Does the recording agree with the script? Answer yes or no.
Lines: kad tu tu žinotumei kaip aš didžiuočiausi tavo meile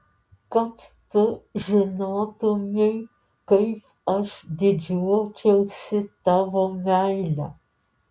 no